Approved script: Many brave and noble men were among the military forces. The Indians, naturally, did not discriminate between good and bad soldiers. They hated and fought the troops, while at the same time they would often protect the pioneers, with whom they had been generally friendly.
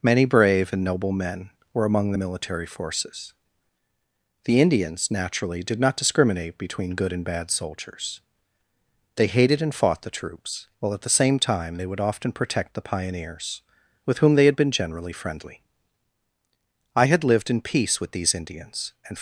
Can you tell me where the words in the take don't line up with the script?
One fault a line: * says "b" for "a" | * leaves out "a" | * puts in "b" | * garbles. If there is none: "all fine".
* puts in "I had lived in peace with these Indians and"